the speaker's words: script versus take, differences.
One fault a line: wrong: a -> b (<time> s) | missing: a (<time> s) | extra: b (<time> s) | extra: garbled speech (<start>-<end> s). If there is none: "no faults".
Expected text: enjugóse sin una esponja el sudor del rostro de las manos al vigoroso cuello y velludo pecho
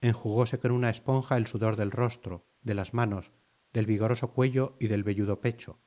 wrong: sin -> con (0.6 s)
wrong: al -> del (3.7 s)
extra: del (4.9 s)